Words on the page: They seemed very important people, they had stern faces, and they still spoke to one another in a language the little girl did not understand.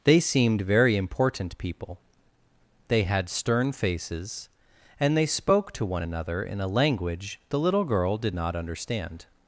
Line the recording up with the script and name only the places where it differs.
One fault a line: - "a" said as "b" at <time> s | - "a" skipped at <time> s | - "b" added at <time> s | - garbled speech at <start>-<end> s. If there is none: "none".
- "still" skipped at 5.3 s